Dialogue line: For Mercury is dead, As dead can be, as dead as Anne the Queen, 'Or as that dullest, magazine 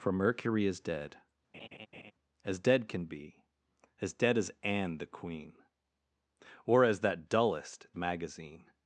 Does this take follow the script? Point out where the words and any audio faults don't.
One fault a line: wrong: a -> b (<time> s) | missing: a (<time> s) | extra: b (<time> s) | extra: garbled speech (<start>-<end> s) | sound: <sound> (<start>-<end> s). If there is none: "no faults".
sound: laugh (1.5-2.1 s)